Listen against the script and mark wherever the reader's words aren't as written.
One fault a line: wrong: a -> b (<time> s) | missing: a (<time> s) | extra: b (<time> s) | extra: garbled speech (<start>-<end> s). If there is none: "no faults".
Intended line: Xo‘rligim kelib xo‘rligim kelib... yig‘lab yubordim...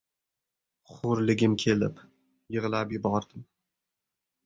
missing: xo‘rligim kelib (2.0 s)